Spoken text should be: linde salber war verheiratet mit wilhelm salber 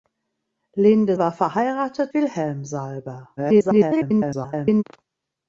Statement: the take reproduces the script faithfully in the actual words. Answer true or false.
false